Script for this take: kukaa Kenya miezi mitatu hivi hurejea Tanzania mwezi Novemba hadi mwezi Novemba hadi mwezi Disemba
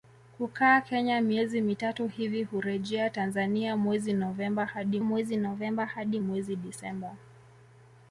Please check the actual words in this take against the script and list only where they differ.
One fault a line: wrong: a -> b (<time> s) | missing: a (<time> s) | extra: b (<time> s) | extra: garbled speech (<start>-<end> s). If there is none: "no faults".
no faults